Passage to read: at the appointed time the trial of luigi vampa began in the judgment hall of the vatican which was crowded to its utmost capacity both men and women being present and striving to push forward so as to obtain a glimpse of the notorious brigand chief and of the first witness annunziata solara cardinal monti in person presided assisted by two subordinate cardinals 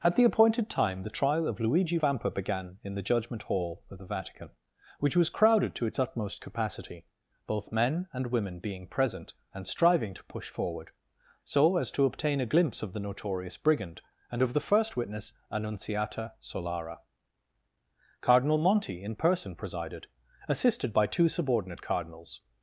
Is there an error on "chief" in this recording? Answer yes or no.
yes